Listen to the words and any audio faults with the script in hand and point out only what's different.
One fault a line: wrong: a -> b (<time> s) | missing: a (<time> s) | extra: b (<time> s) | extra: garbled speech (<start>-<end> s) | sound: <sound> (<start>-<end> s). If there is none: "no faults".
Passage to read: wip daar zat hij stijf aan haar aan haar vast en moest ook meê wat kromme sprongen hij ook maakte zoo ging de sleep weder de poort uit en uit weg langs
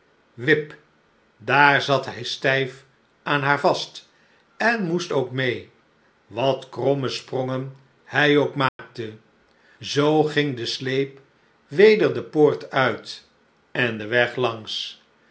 missing: aan haar (3.6 s)
sound: dropout (8.7-8.8 s)
wrong: uit -> den (14.0 s)